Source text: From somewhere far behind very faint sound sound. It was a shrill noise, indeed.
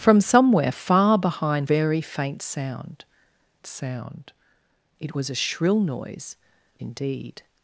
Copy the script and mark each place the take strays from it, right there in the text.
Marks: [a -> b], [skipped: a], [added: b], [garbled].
From somewhere far behind very faint sound sound. It was a shrill noise, indeed.